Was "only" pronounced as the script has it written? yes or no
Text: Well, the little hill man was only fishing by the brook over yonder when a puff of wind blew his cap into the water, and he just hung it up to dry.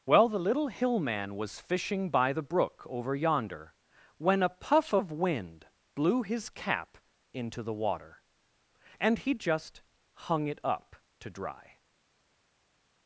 no